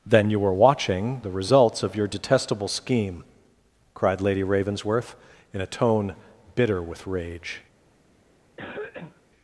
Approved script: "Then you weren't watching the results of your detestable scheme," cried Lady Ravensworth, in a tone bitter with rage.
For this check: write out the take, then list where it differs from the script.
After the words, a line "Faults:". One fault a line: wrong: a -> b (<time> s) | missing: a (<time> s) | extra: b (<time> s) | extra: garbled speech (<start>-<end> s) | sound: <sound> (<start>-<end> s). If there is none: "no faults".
"Then you were watching the results of your detestable scheme," cried Lady Ravensworth, in a tone bitter with rage.
Faults:
wrong: weren't -> were (0.4 s)
sound: cough (8.6-9.2 s)